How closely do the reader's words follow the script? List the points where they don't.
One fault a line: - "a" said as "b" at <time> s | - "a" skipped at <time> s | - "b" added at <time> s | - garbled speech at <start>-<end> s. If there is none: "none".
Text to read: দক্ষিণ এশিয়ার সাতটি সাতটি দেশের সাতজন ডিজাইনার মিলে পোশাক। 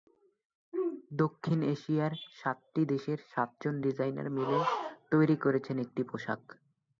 - "সাতটি" skipped at 2.8 s
- "তৈরি করেছেন একটি" added at 5.1 s